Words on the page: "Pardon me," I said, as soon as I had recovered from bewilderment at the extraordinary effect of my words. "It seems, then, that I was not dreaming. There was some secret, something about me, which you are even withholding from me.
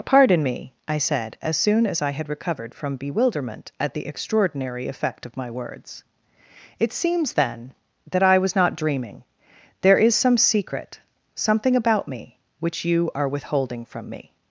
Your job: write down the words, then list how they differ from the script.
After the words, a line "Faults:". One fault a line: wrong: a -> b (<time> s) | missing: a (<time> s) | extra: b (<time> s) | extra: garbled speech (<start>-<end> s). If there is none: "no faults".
"Pardon me," I said, as soon as I had recovered from bewilderment at the extraordinary effect of my words. "It seems, then, that I was not dreaming. There is some secret, something about me, which you are withholding from me.
Faults:
wrong: was -> is (10.0 s)
missing: even (13.3 s)